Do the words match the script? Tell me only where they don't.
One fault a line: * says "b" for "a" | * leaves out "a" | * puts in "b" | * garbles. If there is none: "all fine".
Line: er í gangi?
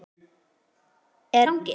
all fine